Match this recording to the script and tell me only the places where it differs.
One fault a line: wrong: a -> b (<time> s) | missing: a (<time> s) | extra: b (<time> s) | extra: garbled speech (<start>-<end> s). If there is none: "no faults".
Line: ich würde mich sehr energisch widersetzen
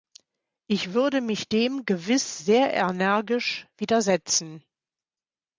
extra: dem gewiss (1.5 s)